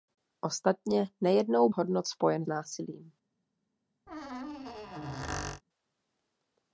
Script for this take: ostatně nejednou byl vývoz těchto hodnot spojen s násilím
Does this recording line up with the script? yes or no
no